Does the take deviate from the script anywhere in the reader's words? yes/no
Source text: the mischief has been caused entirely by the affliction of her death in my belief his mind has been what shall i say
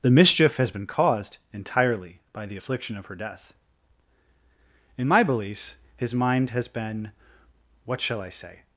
no